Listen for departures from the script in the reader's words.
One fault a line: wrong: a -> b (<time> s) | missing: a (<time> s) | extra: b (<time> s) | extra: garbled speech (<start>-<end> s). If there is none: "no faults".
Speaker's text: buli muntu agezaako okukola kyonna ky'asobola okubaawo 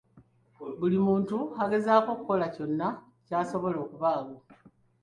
no faults